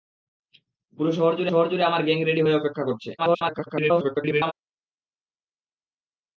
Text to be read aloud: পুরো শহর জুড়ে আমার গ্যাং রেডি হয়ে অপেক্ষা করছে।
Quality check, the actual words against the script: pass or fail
fail